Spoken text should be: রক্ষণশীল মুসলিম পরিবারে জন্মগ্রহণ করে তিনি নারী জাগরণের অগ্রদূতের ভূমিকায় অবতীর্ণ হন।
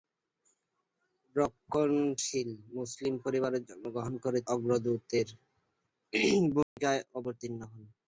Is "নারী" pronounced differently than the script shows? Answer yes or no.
yes